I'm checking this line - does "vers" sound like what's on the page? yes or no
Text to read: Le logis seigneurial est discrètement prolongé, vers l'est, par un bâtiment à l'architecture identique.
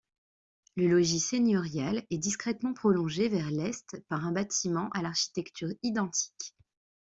yes